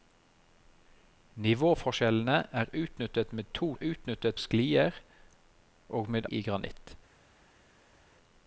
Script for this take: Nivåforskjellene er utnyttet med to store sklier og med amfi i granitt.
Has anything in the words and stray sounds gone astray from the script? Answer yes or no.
yes